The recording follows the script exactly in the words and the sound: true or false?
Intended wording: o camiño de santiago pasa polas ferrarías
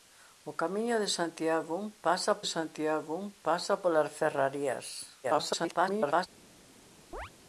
false